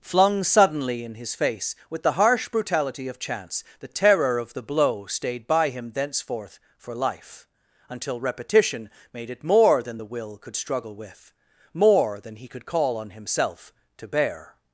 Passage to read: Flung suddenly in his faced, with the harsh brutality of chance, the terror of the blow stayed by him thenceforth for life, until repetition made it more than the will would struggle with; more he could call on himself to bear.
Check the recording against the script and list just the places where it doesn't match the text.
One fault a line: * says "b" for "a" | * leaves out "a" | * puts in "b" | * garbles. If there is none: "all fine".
* says "face" for "faced"
* says "could" for "would"
* puts in "than"